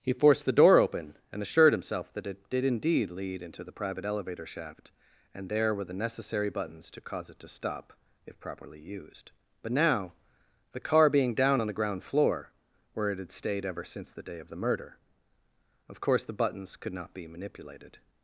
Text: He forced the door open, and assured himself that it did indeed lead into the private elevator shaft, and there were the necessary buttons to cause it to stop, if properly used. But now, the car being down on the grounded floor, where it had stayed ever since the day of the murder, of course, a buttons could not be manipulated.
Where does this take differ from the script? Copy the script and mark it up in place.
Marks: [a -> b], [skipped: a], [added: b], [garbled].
He forced the door open, and assured himself that it did indeed lead into the private elevator shaft, and there were the necessary buttons to cause it to stop, if properly used. But now, the car being down on the [grounded -> ground] floor, where it had stayed ever since the day of the murder, of course, [a -> the] buttons could not be manipulated.